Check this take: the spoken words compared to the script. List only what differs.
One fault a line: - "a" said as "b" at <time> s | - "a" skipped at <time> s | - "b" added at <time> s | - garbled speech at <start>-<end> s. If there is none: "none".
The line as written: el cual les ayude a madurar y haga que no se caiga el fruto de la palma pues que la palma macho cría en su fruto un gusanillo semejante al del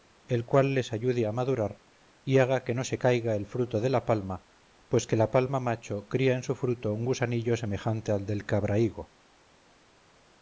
none